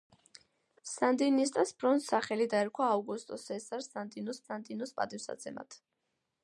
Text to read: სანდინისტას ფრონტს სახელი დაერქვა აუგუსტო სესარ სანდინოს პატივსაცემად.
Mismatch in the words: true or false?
true